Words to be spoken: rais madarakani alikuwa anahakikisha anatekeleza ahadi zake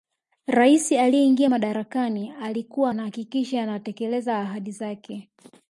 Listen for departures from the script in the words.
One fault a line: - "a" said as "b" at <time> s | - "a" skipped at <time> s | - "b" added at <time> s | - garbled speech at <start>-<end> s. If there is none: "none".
- "aliyeingia" added at 0.9 s